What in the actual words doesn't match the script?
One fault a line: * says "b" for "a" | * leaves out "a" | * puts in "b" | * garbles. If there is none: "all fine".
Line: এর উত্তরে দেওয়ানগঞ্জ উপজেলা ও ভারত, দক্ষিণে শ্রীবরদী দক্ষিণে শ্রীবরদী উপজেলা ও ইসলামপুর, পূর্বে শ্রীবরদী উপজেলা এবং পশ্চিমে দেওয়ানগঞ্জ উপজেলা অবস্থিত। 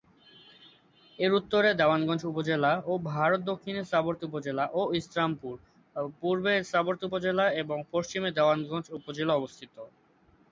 * leaves out "দক্ষিণে শ্রীবরদী"